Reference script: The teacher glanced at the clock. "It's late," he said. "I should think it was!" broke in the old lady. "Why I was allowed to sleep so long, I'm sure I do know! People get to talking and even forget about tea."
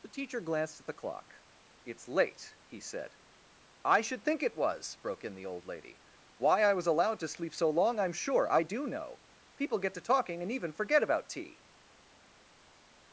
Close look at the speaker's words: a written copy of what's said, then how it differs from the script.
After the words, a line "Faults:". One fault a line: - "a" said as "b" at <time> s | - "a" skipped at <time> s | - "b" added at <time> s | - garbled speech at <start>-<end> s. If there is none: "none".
The teacher glanced at the clock. "It's late," he said. "I should think it was!" broke in the old lady. "Why I was allowed to sleep so long, I'm sure I do know! People get to talking and even forget about tea."
Faults:
none